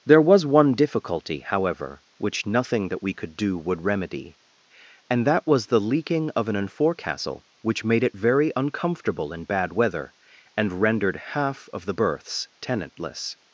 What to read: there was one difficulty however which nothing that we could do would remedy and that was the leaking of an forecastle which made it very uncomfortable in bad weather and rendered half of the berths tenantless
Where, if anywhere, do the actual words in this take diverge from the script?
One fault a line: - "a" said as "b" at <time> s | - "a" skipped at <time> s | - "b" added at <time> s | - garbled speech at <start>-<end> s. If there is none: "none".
none